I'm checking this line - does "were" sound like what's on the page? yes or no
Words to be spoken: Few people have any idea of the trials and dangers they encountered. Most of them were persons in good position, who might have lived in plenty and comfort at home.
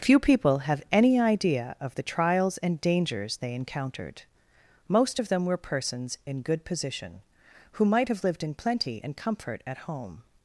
yes